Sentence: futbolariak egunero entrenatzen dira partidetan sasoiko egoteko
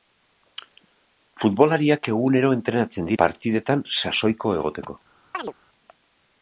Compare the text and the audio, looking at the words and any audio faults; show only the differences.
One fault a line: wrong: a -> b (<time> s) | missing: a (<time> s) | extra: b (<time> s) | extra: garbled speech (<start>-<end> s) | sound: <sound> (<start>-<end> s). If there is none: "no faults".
missing: dira (3.1 s)
sound: chirp (5.3-5.5 s)